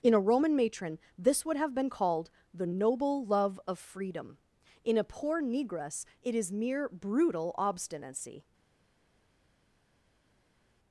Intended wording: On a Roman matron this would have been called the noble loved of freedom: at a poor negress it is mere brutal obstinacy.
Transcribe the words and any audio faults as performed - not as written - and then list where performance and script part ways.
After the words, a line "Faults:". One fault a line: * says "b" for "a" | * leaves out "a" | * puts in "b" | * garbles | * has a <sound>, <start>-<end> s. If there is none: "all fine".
In a Roman matron this would have been called the noble love of freedom: in a poor negress it is mere brutal obstinacy.
Faults:
* says "In" for "On"
* says "love" for "loved"
* says "in" for "at"